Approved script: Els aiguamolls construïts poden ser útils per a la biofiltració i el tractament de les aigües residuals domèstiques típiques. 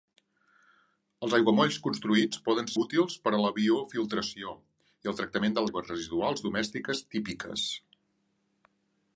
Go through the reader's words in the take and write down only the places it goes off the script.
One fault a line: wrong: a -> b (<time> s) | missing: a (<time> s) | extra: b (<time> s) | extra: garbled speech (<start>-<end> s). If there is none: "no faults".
missing: ser (2.7 s)
missing: les (5.7 s)